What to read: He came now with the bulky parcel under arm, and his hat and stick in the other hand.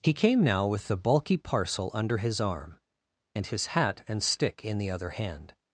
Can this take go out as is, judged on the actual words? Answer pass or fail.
fail